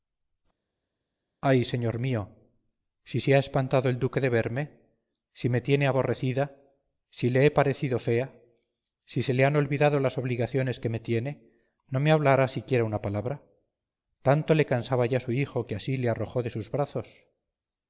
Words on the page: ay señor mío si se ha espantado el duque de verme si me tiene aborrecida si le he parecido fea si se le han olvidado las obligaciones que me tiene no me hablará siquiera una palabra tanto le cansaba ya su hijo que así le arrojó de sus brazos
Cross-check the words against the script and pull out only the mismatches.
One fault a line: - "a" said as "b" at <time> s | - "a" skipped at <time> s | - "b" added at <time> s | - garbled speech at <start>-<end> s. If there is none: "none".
none